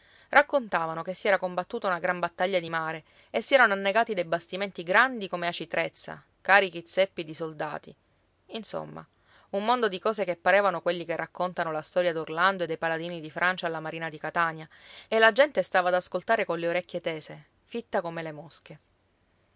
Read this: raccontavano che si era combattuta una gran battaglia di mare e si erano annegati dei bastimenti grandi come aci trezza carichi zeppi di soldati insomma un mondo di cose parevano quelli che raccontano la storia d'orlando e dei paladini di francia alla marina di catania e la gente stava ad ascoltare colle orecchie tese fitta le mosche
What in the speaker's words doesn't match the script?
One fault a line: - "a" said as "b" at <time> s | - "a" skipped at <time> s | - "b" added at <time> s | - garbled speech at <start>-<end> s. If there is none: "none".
- "che" added at 10.2 s
- "come" added at 18.0 s